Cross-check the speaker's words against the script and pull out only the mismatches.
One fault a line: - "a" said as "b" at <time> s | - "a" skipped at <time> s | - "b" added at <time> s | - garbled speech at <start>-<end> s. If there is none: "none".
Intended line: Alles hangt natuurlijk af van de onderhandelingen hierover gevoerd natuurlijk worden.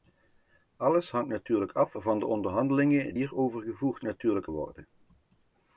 none